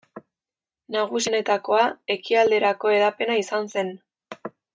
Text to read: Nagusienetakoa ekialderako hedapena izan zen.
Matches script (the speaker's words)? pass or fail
pass